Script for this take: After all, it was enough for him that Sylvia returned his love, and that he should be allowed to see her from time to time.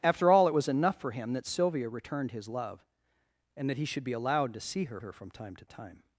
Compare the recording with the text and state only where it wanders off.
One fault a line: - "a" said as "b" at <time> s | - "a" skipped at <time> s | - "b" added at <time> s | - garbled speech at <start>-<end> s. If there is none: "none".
- "her" added at 5.0 s